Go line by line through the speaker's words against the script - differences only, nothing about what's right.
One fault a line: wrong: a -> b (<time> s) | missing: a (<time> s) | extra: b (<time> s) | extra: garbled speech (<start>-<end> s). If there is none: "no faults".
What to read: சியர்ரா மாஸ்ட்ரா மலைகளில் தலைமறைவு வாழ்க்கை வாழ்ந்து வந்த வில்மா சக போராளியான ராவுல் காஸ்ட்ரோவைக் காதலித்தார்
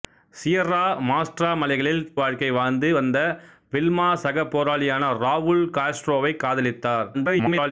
missing: தலைமறைவு (2.1 s)
extra: garbled speech (7.1-7.7 s)